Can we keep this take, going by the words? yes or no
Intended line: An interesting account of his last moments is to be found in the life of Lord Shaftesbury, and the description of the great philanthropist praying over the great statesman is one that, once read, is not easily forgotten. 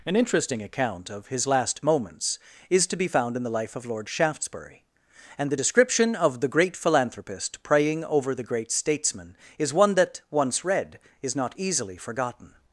yes